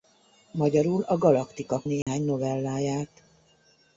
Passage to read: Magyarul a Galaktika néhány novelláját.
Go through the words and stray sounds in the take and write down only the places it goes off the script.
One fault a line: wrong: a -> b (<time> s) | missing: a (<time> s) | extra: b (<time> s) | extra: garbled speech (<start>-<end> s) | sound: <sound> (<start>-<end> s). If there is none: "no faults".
sound: dropout (2.0-2.1 s)